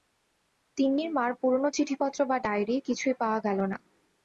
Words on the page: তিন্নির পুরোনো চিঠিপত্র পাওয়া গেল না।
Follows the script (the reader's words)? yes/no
no